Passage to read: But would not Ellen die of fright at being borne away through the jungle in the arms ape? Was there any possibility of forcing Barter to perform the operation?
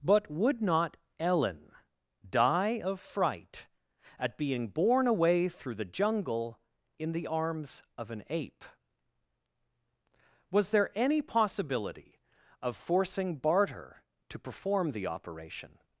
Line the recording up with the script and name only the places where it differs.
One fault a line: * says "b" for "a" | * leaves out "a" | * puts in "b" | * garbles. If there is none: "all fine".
* puts in "of an"